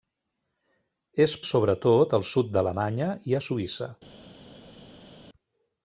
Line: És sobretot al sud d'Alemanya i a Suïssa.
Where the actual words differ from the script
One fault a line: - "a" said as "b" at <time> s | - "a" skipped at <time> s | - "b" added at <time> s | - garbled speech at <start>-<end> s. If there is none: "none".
none